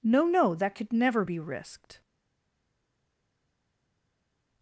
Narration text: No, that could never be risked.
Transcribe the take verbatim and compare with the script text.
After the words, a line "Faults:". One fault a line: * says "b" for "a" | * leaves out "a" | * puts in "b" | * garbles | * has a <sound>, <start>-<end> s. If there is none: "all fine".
No no, that could never be risked.
Faults:
* puts in "no"